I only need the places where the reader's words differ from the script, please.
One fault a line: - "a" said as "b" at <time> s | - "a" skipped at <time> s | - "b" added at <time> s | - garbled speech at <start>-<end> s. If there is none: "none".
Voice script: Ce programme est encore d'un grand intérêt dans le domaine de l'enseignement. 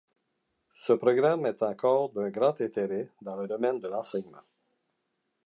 none